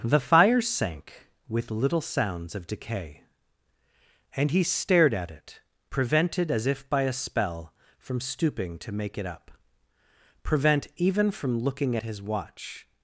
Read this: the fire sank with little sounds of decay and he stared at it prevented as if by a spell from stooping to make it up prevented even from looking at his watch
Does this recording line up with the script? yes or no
no